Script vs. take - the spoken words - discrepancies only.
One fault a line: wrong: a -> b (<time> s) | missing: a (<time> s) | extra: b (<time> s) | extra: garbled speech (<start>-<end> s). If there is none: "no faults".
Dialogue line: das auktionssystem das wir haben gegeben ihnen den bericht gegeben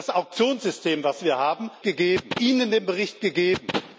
no faults